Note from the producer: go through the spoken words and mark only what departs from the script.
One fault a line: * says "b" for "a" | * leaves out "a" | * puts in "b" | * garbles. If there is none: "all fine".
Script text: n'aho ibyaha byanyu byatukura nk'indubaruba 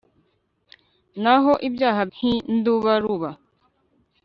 * leaves out "byanyu byatukura"